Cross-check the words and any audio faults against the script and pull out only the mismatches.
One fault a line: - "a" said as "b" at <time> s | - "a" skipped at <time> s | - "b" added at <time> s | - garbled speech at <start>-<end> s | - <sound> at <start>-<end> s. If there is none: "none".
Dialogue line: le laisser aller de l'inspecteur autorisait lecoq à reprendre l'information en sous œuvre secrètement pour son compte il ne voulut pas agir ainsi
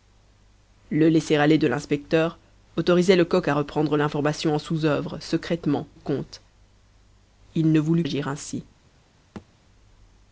- "pour son" skipped at 5.9 s
- "pas" skipped at 8.0 s
- thud at 9.4-9.5 s